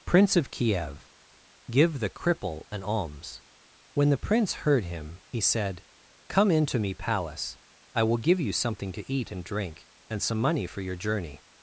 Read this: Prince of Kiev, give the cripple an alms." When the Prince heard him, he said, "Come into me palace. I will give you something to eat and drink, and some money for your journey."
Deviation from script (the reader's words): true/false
false